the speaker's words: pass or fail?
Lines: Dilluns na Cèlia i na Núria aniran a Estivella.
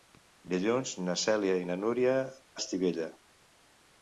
fail